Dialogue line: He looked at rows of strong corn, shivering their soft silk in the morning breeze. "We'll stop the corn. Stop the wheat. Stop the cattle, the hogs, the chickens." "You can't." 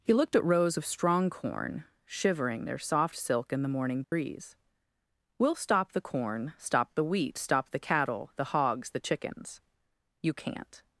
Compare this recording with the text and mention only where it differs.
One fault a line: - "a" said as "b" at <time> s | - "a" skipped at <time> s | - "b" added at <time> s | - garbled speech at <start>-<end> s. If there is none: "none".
none